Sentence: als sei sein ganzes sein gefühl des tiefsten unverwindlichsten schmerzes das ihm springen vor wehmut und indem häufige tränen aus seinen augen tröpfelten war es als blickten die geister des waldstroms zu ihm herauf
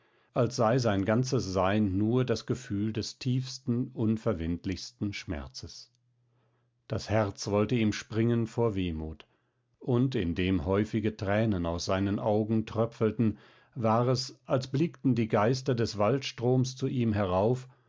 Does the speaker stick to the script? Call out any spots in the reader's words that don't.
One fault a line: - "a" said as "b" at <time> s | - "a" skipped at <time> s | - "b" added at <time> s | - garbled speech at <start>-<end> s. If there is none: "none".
- "nur das" added at 2.0 s
- "herz wollte" added at 7.1 s